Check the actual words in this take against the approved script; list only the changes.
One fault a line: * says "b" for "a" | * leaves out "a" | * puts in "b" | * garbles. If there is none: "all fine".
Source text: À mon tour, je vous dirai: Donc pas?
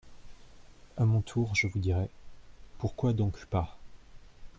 * puts in "Pourquoi"